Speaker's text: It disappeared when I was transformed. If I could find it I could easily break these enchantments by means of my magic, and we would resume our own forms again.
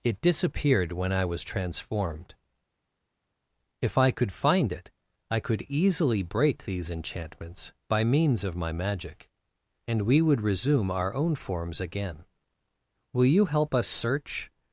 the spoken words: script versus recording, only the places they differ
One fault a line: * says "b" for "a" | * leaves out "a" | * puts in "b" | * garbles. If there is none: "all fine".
* puts in "Will you help us search"